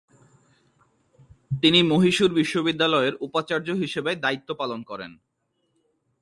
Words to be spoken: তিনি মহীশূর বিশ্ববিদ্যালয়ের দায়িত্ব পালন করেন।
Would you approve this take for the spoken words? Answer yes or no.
no